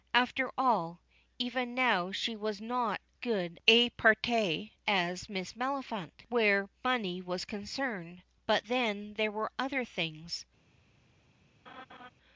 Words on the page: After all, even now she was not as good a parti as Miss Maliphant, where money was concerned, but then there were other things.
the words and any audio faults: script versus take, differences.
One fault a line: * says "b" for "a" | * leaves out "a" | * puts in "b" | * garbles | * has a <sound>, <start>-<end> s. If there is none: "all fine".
* leaves out "as"
* has a laugh, 11.7-12.1 s